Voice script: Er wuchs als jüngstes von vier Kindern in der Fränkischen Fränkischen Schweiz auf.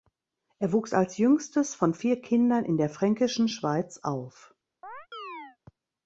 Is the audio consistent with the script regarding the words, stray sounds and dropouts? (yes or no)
no